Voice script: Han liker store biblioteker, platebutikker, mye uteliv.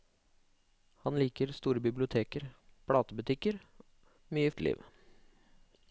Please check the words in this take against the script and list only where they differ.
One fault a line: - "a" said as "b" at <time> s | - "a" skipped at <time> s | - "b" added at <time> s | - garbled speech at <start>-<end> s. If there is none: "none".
none